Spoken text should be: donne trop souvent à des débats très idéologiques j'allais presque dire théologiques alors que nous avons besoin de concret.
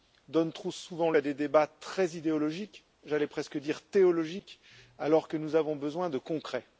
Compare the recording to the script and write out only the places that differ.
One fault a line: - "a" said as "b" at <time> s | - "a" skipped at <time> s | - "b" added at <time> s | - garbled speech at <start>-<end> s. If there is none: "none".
none